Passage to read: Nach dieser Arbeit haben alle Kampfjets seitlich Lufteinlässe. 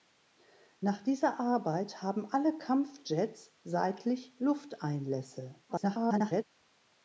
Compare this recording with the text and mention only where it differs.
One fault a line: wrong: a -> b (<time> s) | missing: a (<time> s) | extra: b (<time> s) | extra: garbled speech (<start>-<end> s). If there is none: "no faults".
extra: garbled speech (5.7-6.4 s)